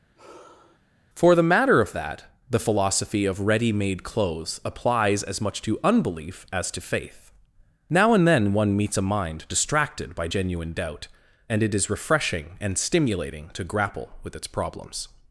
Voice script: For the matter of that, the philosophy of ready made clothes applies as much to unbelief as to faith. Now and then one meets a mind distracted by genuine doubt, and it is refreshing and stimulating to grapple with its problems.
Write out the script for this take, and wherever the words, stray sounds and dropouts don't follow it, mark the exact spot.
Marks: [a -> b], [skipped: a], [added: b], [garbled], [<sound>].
[sigh] For the matter of that, the philosophy of ready made clothes applies as much to unbelief as to faith. Now and then one meets a mind distracted by genuine doubt, and it is refreshing and stimulating to grapple with its problems.